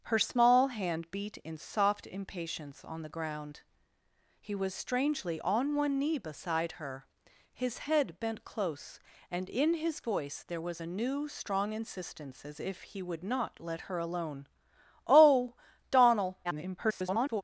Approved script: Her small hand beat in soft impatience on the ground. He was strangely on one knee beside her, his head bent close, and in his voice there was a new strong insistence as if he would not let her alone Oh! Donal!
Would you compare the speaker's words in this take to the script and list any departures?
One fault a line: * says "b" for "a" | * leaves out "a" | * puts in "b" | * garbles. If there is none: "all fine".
* garbles